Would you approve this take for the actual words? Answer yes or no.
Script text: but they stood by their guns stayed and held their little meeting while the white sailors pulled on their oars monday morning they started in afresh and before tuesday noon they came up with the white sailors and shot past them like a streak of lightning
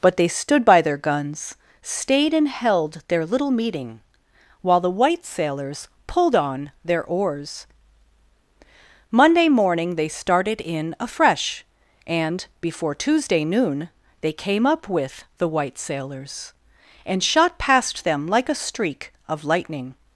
yes